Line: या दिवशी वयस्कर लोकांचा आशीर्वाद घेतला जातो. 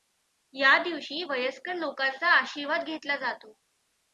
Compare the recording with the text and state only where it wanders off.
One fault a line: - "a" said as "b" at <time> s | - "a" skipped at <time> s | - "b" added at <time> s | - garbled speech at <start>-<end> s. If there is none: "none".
none